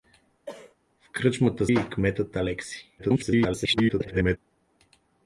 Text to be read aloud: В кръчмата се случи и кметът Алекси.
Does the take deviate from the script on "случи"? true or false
true